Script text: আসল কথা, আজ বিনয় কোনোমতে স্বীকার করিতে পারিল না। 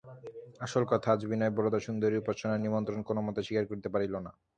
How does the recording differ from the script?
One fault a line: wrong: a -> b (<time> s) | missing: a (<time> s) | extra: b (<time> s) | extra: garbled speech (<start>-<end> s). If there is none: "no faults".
extra: বরদাসুন্দরীর উপাসনার নিমন্ত্রণ (1.6 s)